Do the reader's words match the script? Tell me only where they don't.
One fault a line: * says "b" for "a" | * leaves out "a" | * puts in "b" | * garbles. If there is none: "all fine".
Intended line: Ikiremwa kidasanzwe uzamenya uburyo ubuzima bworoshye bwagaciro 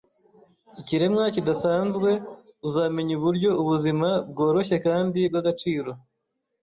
* puts in "kandi"